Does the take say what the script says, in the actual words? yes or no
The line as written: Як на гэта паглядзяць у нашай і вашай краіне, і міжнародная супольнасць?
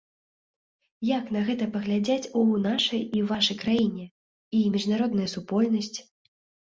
yes